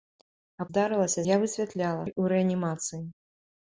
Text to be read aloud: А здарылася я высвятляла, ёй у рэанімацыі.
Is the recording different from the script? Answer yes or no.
no